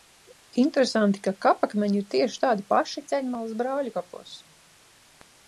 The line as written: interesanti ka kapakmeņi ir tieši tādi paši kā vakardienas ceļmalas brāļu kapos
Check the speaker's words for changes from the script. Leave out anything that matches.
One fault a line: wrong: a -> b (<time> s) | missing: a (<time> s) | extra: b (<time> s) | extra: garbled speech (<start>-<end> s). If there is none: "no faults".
missing: kā vakardienas (3.0 s)